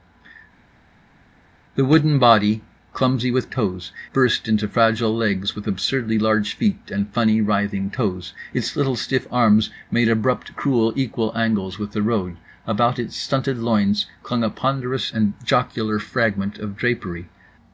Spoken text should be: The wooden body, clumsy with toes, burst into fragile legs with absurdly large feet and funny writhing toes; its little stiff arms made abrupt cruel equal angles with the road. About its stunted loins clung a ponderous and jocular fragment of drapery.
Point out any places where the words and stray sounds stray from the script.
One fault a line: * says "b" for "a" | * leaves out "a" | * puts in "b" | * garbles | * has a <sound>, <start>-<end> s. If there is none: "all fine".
all fine